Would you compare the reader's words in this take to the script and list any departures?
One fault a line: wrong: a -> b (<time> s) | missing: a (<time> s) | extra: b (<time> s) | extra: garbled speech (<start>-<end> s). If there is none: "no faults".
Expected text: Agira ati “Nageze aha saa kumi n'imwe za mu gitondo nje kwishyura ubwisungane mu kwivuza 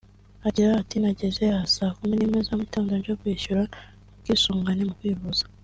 no faults